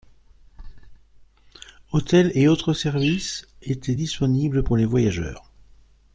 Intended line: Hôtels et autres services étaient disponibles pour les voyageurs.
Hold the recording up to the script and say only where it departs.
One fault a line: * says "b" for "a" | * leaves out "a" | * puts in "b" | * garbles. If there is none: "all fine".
all fine